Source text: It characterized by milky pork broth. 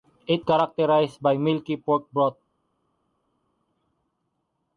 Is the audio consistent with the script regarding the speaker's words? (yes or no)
yes